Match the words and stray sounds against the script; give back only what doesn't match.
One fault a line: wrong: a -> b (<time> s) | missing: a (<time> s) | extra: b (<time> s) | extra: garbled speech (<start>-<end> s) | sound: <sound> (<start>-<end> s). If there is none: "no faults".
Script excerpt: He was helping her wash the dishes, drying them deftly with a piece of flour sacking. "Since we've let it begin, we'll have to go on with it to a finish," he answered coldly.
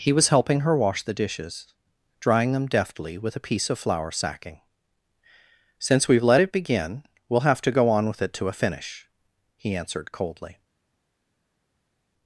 no faults